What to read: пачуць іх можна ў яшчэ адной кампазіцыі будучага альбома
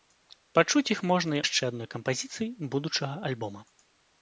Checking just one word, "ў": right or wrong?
wrong